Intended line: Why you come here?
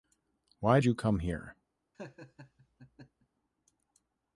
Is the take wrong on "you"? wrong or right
right